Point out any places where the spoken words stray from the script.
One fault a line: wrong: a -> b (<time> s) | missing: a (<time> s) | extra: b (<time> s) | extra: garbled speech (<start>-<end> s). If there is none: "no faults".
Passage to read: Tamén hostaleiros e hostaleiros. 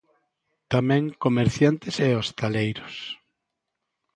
wrong: hostaleiros -> comerciantes (1.2 s)